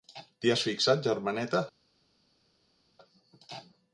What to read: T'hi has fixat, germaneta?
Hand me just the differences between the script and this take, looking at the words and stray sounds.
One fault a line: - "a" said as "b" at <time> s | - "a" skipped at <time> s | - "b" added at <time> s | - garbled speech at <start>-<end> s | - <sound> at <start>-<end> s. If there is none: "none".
none